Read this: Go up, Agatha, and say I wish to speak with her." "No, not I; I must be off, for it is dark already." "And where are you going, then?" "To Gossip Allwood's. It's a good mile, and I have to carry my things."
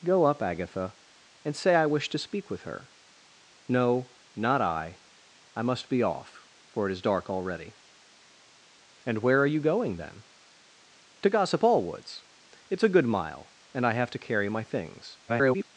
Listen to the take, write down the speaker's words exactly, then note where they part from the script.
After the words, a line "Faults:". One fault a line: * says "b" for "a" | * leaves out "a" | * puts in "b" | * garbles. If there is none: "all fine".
Go up, Agatha, and say I wish to speak with her." "No, not I; I must be off, for it is dark already." "And where are you going, then?" "To Gossip Allwood's. It's a good mile, and I have to carry my things." [garbled]
Faults:
* garbles